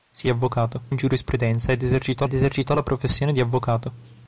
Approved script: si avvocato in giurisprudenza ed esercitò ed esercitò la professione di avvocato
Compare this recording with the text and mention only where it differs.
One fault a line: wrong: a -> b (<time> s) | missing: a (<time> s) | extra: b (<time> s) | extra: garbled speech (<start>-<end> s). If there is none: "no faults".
no faults